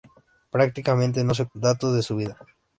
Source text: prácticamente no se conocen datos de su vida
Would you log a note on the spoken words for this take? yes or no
yes